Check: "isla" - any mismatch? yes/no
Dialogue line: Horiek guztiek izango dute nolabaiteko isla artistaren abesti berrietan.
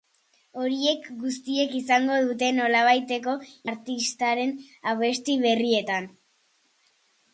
yes